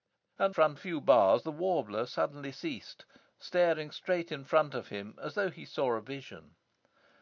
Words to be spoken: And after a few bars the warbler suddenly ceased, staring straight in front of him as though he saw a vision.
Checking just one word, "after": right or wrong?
wrong